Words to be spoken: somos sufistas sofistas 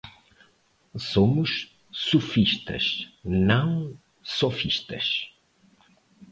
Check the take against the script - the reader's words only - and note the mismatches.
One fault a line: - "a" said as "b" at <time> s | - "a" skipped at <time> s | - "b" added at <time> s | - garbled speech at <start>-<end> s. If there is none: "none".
- "não" added at 3.2 s